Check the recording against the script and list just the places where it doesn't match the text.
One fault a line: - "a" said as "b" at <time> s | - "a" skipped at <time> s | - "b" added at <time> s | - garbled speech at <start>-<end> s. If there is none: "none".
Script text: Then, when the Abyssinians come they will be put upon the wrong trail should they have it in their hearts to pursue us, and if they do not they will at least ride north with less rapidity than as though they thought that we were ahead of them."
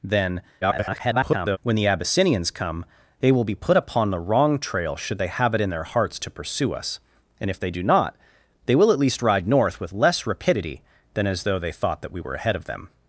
- garbled speech at 0.6-1.6 s